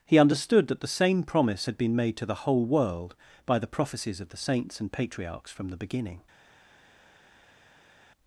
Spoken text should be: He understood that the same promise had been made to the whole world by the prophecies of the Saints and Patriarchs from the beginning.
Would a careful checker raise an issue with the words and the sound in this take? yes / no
no